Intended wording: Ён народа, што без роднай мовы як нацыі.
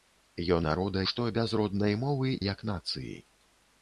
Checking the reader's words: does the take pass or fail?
pass